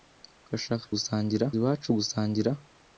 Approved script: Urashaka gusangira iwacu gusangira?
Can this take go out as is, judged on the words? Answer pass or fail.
pass